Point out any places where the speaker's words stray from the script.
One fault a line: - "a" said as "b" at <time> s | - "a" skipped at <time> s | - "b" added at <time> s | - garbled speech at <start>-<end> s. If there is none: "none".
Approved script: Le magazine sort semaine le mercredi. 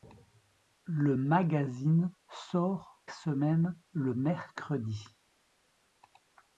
none